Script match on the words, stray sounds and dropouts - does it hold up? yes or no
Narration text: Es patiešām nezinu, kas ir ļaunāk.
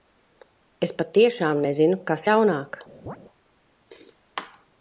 no